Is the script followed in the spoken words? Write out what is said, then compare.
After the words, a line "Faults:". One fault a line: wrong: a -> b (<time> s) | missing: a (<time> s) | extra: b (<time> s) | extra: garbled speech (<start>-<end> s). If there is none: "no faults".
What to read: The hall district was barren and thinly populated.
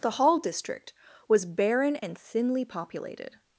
The hall district was barren and thinly populated.
Faults:
no faults